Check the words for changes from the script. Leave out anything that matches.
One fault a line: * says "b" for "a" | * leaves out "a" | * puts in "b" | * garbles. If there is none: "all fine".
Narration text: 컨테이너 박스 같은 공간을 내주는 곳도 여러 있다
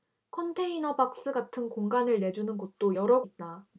all fine